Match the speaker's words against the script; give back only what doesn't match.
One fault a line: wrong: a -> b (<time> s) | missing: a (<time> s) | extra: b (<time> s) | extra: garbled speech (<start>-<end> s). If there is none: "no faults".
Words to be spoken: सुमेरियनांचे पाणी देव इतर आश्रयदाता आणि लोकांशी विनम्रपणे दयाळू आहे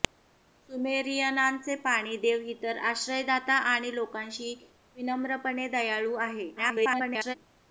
extra: garbled speech (6.6-7.3 s)